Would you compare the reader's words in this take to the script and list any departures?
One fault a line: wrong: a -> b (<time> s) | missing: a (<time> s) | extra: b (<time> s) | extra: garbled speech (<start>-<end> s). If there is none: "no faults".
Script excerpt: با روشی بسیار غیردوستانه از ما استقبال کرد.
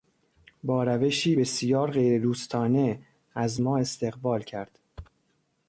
no faults